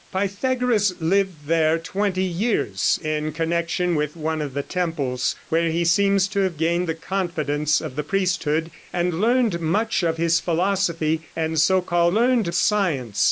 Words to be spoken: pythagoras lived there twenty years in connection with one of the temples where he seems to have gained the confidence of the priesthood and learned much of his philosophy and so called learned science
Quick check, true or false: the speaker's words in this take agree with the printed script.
true